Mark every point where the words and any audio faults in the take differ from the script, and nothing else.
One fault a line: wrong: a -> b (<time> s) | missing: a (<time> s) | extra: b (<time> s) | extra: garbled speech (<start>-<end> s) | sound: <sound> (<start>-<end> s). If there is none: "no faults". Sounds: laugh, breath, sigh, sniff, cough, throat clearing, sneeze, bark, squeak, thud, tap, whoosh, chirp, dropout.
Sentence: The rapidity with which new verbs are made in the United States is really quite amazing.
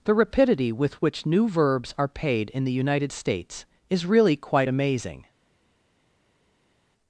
wrong: made -> paid (2.1 s)